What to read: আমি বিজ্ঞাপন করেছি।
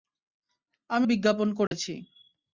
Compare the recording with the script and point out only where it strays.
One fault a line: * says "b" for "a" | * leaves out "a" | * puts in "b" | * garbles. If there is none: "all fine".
all fine